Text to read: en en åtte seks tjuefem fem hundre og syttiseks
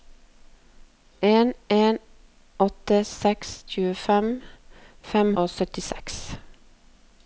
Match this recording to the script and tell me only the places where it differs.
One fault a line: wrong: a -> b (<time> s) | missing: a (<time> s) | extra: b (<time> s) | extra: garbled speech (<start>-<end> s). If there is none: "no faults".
missing: hundre (5.3 s)